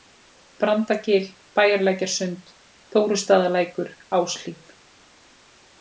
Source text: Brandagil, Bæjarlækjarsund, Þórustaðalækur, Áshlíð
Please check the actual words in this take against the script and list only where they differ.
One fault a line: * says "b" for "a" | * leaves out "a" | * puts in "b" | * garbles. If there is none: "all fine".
all fine